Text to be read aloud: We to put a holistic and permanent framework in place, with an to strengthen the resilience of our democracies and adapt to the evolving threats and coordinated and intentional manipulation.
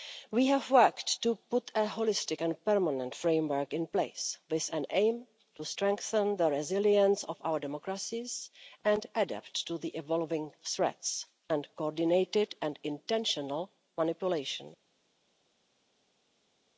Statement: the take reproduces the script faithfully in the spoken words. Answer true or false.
false